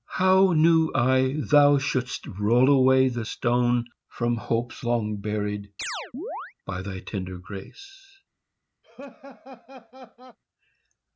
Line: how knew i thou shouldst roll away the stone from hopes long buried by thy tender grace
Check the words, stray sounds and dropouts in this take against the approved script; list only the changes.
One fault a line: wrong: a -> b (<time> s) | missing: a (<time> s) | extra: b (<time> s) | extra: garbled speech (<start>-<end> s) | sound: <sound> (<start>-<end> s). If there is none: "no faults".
sound: chirp (5.8-6.5 s)
sound: laugh (8.8-10.4 s)